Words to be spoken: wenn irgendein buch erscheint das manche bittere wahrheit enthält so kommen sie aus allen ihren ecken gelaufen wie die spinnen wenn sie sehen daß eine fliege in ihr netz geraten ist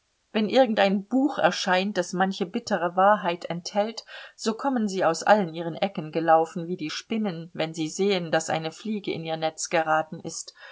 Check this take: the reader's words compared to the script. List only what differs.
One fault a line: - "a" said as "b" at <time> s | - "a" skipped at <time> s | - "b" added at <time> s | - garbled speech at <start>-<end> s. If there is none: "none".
none